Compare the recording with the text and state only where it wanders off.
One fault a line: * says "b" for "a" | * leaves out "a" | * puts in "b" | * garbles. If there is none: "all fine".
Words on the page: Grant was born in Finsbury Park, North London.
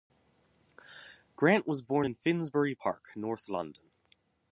all fine